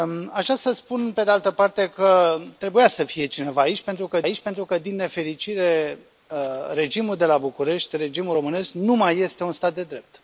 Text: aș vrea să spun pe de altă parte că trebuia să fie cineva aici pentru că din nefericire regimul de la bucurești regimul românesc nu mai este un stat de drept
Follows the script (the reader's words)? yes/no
no